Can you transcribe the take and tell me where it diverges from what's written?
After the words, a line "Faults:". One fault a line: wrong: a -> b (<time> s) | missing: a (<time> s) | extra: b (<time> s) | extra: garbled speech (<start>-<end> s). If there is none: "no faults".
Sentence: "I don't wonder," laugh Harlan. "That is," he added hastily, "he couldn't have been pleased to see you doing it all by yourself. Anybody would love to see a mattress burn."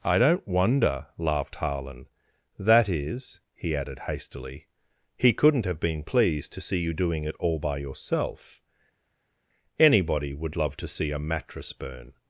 "I don't wonder," laughed Harlan. "That is," he added hastily, "he couldn't have been pleased to see you doing it all by yourself. Anybody would love to see a mattress burn."
Faults:
wrong: laugh -> laughed (1.2 s)